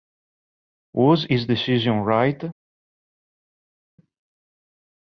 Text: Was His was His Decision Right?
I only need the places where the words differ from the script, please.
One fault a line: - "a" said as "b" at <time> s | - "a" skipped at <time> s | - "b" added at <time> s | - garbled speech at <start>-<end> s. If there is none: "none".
- "was His" skipped at 1.5 s